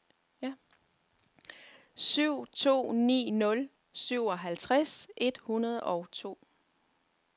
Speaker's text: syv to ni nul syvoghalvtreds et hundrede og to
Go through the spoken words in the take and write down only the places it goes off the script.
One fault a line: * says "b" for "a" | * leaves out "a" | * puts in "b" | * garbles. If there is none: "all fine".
all fine